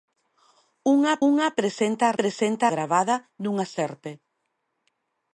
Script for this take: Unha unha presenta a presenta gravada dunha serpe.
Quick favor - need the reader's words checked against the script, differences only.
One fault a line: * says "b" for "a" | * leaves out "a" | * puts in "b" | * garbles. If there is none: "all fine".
all fine